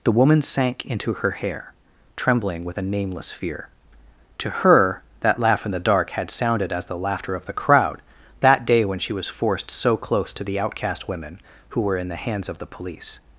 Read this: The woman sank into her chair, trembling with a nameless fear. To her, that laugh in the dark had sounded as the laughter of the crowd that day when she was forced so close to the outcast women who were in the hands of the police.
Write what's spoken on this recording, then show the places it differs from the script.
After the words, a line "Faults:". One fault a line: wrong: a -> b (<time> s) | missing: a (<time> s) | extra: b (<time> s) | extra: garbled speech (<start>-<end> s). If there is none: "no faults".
The woman sank into her hair, trembling with a nameless fear. To her, that laugh in the dark had sounded as the laughter of the crowd that day when she was forced so close to the outcast women who were in the hands of the police.
Faults:
wrong: chair -> hair (1.3 s)